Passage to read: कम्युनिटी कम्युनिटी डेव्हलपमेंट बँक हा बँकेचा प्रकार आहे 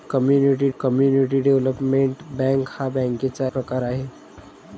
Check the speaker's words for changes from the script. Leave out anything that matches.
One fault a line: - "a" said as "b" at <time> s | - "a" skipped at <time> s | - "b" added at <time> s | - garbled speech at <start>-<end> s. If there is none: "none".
none